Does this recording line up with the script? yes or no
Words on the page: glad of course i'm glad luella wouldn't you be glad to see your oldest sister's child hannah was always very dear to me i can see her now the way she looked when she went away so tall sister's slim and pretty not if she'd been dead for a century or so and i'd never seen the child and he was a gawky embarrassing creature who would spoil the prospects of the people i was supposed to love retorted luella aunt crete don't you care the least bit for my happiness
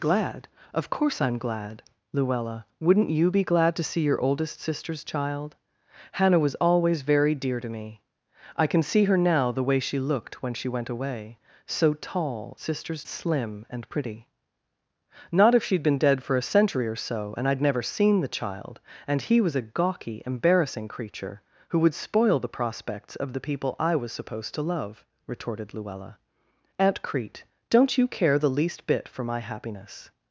yes